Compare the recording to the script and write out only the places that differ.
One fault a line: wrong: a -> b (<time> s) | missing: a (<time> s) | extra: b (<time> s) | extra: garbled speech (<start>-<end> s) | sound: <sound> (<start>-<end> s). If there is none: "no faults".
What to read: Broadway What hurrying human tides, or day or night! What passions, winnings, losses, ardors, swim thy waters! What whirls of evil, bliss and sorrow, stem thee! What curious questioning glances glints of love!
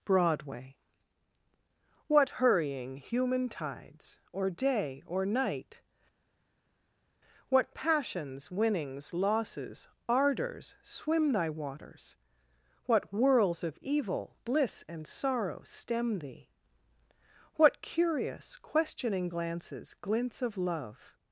no faults